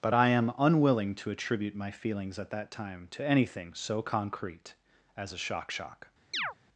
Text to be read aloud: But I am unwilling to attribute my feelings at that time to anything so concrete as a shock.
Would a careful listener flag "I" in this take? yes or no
no